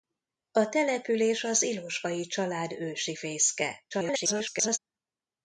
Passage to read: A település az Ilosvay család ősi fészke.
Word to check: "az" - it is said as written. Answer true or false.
true